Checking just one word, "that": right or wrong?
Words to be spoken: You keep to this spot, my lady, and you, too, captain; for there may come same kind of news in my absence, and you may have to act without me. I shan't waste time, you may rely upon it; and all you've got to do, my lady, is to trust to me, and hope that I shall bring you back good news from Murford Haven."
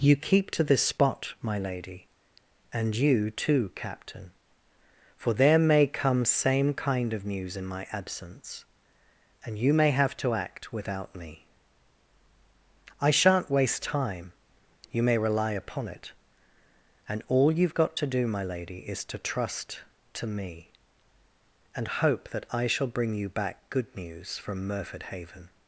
right